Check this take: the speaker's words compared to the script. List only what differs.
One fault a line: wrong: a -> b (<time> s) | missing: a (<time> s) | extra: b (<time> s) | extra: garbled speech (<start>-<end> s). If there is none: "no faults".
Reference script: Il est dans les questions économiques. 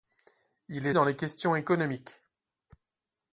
no faults